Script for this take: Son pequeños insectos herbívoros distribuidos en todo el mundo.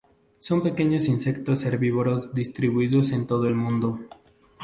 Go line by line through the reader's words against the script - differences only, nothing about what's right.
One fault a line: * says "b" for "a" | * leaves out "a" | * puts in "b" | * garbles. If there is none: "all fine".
all fine